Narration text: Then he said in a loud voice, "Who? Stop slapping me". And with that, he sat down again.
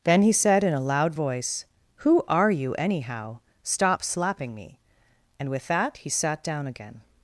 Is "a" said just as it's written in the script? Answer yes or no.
yes